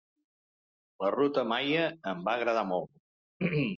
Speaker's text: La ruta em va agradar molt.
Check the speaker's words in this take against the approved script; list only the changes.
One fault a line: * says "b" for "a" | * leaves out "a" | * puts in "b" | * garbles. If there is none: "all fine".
* puts in "maia"